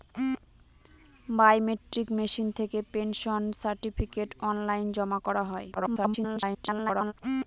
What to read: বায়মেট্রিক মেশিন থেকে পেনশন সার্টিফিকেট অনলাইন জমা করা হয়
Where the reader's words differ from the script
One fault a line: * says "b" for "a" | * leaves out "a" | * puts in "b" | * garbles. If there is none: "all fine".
* garbles